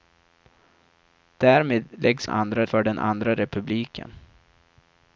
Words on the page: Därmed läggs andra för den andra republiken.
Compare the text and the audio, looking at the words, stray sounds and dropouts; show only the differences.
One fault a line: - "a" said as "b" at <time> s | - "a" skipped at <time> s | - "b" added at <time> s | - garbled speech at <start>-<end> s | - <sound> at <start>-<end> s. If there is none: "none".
none